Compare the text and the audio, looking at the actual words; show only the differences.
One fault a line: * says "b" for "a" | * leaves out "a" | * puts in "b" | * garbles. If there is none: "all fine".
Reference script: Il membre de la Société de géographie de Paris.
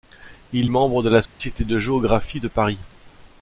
all fine